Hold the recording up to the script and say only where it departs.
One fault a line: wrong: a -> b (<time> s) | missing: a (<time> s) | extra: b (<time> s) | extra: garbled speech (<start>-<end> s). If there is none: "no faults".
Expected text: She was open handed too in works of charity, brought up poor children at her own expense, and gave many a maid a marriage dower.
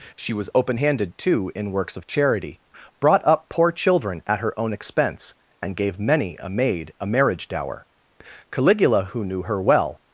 extra: Caligula who knew her well (8.5 s)